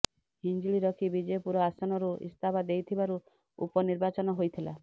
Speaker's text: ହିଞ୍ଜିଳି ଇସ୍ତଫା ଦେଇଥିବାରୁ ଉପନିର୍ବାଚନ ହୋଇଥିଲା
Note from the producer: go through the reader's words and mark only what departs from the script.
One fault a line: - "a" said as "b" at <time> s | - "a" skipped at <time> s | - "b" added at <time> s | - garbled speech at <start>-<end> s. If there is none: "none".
- "ରଖି ବିଜେପୁର ଆସନରୁ" added at 0.8 s